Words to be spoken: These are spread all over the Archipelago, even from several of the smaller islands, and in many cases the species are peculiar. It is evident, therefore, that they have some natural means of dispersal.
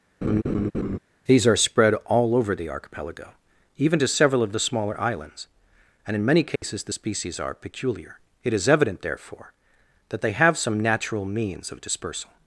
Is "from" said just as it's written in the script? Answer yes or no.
no